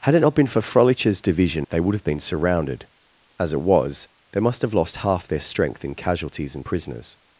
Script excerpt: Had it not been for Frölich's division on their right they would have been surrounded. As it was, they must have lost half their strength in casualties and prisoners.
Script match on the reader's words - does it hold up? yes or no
no